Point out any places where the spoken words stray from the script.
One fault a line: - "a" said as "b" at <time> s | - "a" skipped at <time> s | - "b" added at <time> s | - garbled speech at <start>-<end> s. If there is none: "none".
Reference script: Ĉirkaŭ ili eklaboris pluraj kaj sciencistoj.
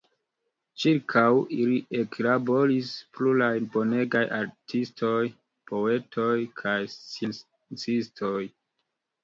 - "bonegaj artistoj poetoj" added at 3.8 s